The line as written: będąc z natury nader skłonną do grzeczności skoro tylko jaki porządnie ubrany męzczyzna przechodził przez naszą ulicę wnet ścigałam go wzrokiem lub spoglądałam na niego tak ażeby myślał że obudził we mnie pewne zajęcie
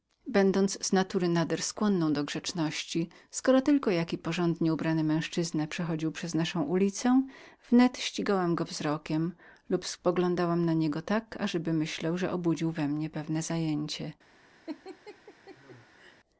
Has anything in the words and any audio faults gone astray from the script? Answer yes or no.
yes